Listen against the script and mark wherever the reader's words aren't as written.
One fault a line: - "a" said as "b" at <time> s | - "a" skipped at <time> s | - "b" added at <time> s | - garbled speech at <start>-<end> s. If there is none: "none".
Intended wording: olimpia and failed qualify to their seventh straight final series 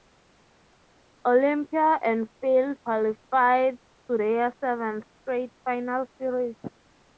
none